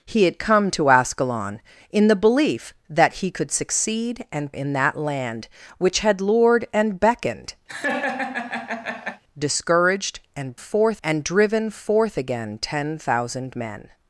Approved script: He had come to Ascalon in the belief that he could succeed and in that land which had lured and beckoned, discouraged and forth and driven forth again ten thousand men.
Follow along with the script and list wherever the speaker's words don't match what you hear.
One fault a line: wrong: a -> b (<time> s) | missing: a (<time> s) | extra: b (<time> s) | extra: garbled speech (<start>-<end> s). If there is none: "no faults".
no faults